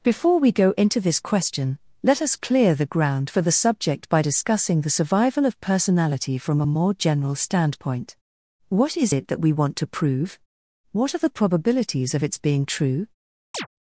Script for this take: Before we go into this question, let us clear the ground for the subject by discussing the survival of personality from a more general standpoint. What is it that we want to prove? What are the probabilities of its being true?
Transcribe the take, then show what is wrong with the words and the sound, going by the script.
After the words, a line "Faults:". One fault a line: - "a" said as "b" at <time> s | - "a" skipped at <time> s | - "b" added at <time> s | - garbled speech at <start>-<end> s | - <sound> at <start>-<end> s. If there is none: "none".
Before we go into this question, let us clear the ground for the subject by discussing the survival of personality from a more general standpoint. What is it that we want to prove? What are the probabilities of its being true?
Faults:
- chirp at 13.5-13.7 s